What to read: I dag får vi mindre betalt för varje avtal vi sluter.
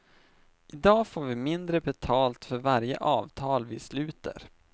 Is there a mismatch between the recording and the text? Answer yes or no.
no